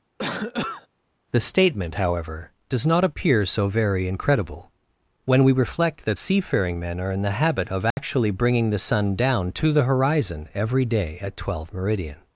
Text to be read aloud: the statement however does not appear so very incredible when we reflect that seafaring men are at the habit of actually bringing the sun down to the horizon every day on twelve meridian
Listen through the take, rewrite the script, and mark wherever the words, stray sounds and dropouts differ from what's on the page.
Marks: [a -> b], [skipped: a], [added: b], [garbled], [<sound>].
[cough] the statement however does not appear so very incredible when we reflect that seafaring men are [at -> in] the habit of actually [dropout] bringing the sun down to the horizon every day [on -> at] twelve meridian